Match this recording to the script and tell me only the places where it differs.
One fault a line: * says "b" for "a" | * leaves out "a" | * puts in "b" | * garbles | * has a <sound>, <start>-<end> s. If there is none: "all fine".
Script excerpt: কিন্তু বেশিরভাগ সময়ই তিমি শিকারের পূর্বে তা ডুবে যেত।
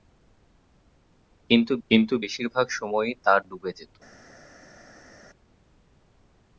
* puts in "কিন্তু"
* leaves out "তিমি শিকারের পূর্বে"